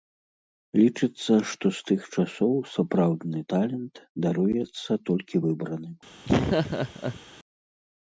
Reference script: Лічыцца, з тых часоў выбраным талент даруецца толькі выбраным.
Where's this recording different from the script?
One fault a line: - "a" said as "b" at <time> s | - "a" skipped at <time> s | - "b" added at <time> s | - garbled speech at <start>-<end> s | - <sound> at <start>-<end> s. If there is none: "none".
- "што" added at 1.5 s
- "выбраным" said as "сапраўдны" at 2.8 s
- laugh at 6.3-7.2 s